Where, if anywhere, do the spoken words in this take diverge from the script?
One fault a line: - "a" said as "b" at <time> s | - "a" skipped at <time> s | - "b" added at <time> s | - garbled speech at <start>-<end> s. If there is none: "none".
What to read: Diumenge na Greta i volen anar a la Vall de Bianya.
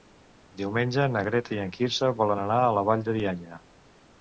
- "en Quirze" added at 1.6 s